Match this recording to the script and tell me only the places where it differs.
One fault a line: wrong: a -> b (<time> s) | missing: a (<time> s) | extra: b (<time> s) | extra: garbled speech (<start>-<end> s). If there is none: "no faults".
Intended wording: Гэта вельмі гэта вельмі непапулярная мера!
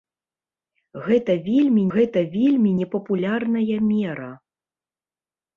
no faults